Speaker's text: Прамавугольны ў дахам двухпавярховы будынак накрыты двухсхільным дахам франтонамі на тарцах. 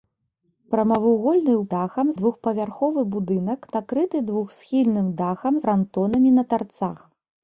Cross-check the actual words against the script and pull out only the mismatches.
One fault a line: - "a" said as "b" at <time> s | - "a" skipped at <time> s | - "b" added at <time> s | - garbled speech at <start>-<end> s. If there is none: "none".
none